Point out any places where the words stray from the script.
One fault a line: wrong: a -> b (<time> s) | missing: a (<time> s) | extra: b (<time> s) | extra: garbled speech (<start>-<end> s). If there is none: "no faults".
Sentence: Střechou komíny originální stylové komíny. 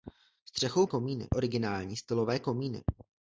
no faults